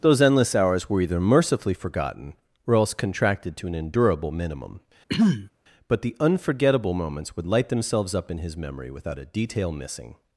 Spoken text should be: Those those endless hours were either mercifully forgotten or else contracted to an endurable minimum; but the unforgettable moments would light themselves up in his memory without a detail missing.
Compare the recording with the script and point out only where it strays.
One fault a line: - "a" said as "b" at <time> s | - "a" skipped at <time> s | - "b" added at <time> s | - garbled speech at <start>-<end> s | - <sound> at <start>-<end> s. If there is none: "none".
- "those" skipped at 0.2 s
- throat clearing at 5.1-5.5 s